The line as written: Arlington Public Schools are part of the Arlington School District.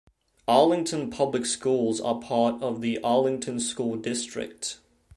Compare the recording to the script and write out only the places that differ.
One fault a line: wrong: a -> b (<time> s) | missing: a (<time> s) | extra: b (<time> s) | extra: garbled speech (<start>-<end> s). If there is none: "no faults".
no faults